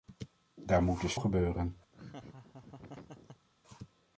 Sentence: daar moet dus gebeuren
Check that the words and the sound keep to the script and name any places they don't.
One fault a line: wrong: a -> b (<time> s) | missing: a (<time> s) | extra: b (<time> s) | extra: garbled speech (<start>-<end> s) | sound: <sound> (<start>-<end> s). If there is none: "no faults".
sound: laugh (1.9-3.5 s)